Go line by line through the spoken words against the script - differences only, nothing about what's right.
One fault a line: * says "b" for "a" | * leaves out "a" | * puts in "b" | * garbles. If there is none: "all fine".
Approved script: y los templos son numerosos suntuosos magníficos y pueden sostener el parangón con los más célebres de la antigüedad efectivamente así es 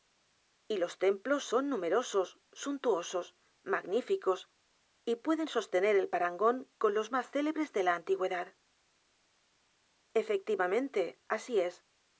all fine